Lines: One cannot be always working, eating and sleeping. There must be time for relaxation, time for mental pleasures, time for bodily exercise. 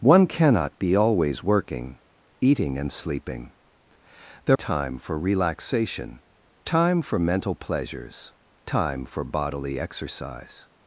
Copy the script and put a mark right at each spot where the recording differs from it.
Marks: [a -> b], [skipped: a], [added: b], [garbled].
One cannot be always working, eating and sleeping. There [skipped: must be] time for relaxation, time for mental pleasures, time for bodily exercise.